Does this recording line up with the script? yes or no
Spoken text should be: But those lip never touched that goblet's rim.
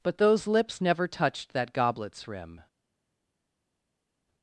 no